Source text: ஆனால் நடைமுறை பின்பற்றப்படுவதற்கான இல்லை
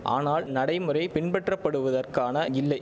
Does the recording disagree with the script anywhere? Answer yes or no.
no